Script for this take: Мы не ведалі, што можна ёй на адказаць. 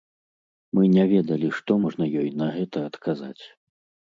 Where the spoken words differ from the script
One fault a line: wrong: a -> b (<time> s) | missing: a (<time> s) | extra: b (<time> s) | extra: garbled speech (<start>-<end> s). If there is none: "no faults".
extra: гэта (2.6 s)